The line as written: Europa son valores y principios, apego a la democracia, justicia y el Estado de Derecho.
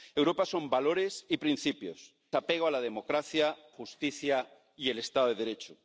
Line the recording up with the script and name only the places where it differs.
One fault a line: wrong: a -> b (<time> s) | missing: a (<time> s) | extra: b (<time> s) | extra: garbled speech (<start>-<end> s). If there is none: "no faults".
no faults